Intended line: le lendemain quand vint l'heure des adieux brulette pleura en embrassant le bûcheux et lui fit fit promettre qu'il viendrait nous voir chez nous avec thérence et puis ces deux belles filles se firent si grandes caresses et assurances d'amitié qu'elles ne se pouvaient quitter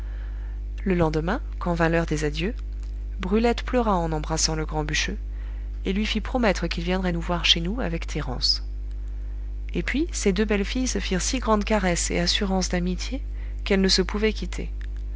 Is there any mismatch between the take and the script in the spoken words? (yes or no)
yes